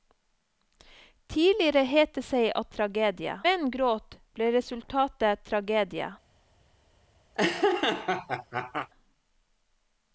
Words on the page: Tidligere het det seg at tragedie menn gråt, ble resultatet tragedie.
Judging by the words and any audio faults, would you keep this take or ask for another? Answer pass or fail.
fail